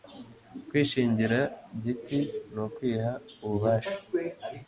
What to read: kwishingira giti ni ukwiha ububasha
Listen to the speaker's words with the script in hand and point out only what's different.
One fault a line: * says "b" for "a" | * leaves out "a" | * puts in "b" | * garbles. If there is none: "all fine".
all fine